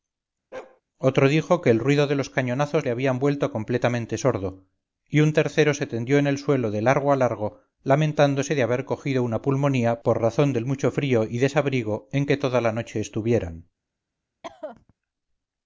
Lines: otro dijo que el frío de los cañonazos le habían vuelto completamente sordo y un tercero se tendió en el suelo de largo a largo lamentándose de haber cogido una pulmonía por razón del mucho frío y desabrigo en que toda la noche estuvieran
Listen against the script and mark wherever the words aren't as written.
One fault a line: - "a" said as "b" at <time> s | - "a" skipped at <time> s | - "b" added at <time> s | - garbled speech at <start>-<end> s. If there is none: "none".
- "frío" said as "ruido" at 1.8 s